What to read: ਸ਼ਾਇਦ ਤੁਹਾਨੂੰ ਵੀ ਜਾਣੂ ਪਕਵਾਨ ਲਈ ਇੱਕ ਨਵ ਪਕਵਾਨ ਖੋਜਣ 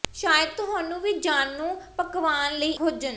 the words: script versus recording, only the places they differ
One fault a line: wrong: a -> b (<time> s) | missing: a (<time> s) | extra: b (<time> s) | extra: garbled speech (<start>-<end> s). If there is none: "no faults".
missing: ਇੱਕ ਨਵ ਪਕਵਾਨ (2.7 s)